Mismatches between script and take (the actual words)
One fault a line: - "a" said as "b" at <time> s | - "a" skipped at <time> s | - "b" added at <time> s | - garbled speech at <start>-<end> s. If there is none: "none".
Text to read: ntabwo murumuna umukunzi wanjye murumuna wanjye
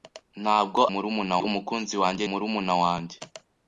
none